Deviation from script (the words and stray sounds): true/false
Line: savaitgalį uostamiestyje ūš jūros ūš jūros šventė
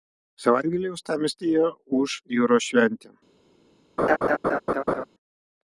true